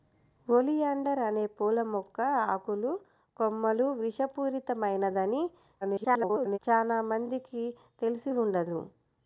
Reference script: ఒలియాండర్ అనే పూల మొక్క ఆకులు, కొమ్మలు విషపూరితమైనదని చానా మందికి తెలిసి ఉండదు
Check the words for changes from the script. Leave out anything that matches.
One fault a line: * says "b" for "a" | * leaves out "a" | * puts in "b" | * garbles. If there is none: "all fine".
* garbles